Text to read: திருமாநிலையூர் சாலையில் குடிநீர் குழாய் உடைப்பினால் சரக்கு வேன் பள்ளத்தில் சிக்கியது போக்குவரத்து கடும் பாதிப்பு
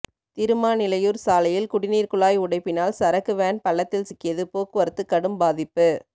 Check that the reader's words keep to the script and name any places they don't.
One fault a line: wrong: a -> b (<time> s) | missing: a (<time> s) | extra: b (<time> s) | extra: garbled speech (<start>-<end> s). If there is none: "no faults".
no faults